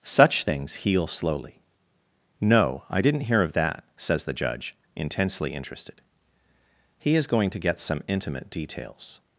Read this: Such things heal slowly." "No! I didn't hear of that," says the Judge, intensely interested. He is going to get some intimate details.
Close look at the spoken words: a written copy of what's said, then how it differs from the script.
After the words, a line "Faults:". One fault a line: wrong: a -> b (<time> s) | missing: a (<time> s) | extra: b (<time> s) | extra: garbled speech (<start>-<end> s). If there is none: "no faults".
Such things heal slowly." "No! I didn't hear of that," says the Judge, intensely interested. He is going to get some intimate details.
Faults:
no faults